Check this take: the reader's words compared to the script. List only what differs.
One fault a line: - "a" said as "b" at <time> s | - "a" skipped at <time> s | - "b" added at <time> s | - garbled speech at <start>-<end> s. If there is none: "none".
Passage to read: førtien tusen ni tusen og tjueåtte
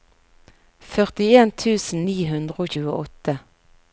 - "tusen" said as "hundre" at 2.3 s